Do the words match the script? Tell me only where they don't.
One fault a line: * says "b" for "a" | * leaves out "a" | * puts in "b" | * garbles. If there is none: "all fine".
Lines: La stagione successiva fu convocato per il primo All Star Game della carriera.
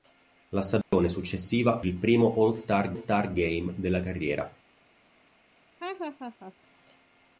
* leaves out "fu convocato per"
* puts in "Star"